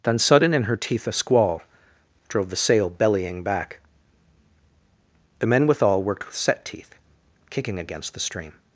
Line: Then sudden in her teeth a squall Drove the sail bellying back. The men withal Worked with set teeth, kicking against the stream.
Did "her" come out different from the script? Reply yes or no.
no